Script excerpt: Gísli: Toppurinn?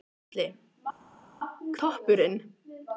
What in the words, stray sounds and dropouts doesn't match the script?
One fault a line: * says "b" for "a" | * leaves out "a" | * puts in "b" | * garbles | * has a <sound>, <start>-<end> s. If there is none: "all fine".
all fine